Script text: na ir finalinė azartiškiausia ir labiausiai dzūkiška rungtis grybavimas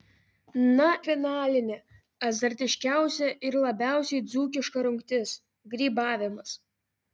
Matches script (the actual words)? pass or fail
fail